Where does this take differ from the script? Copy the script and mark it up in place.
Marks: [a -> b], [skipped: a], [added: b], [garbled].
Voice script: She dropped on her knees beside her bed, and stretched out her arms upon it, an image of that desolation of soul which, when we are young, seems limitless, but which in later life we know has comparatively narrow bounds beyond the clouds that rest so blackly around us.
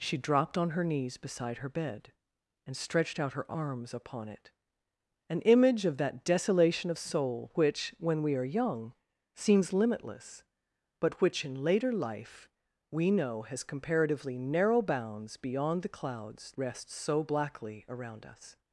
She dropped on her knees beside her bed, and stretched out her arms upon it, an image of that desolation of soul which, when we are young, seems limitless, but which in later life we know has comparatively narrow bounds beyond the clouds [skipped: that] rest so blackly around us.